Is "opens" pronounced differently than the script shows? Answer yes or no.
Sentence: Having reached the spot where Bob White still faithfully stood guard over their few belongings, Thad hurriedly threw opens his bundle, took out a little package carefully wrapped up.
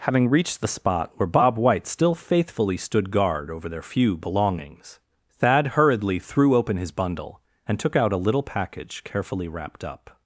yes